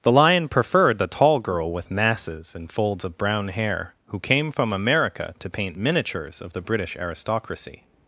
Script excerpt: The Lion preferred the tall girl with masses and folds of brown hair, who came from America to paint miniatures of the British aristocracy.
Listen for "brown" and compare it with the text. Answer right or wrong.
right